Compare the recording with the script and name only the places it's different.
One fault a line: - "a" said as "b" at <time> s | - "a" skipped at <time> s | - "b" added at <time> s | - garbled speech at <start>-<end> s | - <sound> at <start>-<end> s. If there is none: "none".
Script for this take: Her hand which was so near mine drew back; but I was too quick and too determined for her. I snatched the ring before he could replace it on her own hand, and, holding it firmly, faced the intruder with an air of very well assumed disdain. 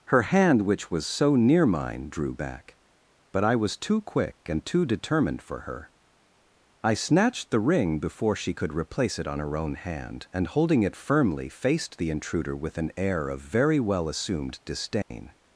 - "he" said as "she" at 8.3 s
- dropout at 15.0-15.1 s